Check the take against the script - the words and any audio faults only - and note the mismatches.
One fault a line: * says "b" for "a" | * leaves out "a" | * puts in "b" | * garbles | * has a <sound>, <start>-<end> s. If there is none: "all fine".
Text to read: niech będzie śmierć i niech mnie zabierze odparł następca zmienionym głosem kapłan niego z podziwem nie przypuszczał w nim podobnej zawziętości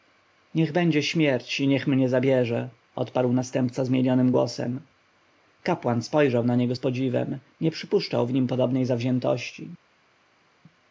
* puts in "spojrzał na"